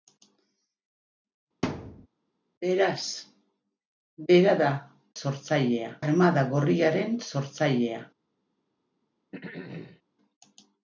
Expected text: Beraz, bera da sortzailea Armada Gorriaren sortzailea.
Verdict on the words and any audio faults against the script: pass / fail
fail